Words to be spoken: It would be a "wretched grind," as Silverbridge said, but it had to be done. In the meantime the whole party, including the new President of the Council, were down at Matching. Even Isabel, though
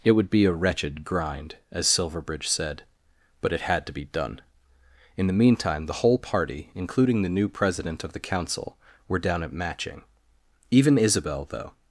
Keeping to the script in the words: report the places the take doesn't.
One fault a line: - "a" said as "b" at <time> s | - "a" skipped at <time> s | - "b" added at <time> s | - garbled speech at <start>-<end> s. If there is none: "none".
none